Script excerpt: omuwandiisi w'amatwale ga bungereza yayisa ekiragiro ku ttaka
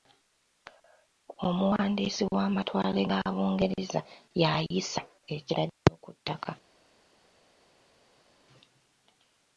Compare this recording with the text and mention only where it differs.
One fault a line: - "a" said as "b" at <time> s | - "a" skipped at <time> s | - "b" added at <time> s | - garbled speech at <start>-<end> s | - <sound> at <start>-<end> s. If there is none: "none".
none